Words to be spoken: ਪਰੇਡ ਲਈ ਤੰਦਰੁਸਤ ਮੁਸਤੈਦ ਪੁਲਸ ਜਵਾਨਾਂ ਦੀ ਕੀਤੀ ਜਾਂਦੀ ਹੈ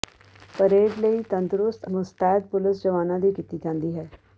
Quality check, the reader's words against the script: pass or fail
pass